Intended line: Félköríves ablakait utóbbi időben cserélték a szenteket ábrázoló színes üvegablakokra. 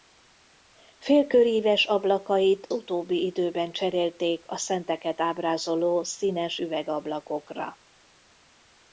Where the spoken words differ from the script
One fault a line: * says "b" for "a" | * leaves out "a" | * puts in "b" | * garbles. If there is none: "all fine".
all fine